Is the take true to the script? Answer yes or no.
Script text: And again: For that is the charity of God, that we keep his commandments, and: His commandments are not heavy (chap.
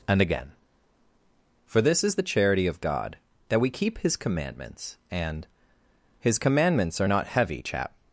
no